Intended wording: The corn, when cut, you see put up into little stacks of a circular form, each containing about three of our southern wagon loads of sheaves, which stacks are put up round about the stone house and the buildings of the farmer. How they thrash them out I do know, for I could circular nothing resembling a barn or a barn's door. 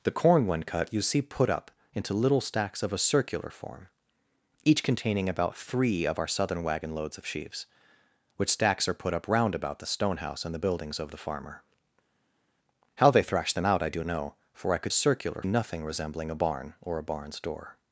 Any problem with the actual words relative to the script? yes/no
no